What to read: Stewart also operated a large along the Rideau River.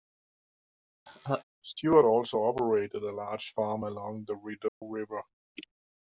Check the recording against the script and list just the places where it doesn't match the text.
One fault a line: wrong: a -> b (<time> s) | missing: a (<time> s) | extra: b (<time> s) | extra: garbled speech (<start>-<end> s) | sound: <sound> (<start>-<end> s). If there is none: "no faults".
sound: laugh (1.1-1.4 s)
extra: farm (3.5 s)
sound: dropout (4.7-4.8 s)